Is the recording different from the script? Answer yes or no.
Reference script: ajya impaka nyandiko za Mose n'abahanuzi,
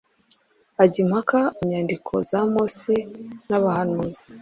no